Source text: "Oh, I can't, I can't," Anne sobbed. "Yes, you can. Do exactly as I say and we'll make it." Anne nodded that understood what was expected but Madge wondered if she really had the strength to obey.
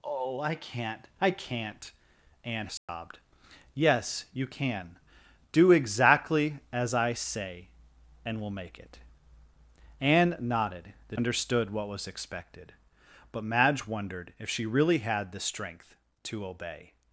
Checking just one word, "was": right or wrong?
right